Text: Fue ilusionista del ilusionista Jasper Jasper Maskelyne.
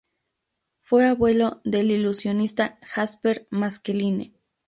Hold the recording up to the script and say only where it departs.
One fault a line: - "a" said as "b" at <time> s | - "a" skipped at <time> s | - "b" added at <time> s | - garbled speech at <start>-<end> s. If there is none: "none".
- "ilusionista" said as "abuelo" at 1.1 s
- "Jasper" skipped at 3.5 s